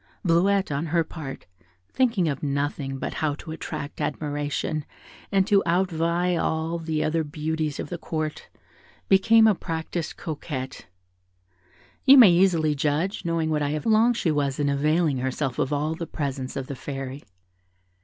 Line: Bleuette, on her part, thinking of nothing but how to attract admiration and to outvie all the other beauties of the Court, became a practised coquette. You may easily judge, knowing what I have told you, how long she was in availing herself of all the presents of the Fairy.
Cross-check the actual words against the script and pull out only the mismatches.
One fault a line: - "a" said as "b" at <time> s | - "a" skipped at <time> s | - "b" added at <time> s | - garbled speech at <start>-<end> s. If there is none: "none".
- "told you how" skipped at 13.8 s